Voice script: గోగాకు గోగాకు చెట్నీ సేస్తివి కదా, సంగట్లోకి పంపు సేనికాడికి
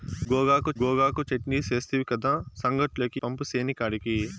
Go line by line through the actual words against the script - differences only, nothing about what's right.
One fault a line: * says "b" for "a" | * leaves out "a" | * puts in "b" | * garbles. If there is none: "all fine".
all fine